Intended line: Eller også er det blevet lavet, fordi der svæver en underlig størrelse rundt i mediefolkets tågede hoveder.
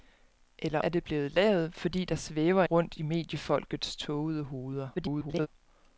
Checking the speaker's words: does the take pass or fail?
fail